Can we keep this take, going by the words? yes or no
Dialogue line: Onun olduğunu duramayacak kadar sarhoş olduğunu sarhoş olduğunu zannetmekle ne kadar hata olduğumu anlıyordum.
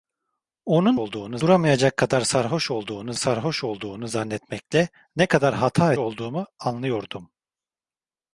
yes